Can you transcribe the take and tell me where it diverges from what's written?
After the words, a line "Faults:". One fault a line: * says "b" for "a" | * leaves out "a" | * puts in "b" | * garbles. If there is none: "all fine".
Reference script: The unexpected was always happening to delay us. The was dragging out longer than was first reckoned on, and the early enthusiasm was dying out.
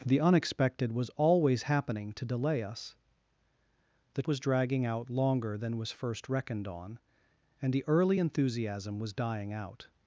The unexpected was always happening to delay us. The was dragging out longer than was first reckoned on, and the early enthusiasm was dying out.
Faults:
all fine